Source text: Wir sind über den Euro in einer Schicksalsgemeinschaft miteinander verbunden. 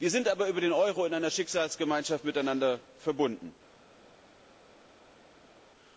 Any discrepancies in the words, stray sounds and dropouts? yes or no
yes